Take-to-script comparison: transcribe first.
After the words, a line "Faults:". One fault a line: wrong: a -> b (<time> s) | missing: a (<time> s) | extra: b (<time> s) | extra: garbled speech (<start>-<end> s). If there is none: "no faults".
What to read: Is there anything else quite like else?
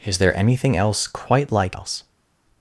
Is there anything else quite like else?
Faults:
no faults